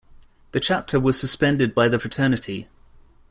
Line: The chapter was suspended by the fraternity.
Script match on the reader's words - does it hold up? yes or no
yes